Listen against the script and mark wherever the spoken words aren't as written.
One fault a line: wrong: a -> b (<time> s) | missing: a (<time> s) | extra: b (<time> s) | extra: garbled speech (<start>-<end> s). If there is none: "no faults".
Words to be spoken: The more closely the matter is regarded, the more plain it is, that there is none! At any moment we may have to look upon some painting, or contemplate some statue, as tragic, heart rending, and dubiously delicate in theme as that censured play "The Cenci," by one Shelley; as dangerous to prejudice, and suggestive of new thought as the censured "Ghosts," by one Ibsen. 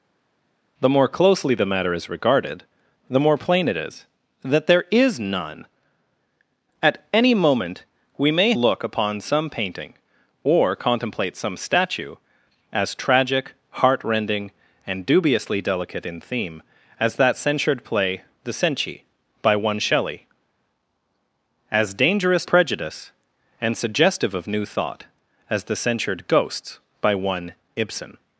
missing: have to (8.5 s)
missing: to (22.4 s)